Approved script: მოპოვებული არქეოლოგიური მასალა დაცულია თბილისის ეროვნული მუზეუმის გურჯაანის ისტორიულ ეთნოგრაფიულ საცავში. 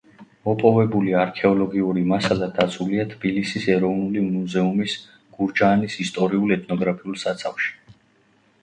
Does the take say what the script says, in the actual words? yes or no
yes